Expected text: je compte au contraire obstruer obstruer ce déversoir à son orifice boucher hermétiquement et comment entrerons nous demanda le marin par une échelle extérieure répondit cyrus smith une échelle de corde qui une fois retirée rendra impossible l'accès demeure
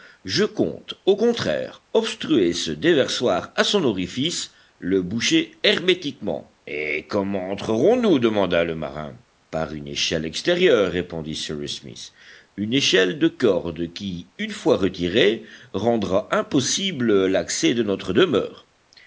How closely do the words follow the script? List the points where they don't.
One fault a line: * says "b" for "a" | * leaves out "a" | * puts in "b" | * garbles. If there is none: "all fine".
* leaves out "obstruer"
* puts in "le"
* puts in "de notre"